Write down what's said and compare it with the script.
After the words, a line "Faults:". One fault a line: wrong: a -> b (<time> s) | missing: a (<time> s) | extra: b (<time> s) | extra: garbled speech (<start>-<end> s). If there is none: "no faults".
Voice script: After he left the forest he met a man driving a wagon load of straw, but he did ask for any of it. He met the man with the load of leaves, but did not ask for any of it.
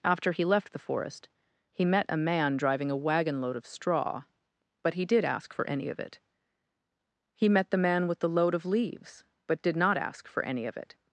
After he left the forest he met a man driving a wagon load of straw, but he did ask for any of it. He met the man with the load of leaves, but did not ask for any of it.
Faults:
no faults